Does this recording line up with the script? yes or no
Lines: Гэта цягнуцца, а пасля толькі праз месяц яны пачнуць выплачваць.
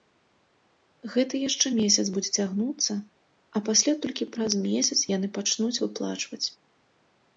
no